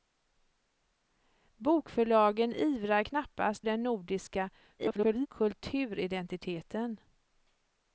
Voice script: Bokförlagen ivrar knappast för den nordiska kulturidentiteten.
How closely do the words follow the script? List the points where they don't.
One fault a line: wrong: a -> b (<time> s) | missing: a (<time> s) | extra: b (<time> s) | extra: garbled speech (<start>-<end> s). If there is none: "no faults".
missing: för (3.7 s)
extra: garbled speech (4.8-5.3 s)